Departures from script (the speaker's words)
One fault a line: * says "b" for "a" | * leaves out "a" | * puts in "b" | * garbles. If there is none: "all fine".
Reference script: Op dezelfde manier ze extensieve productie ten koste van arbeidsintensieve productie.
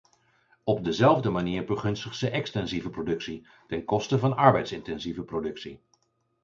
* puts in "begunstigt"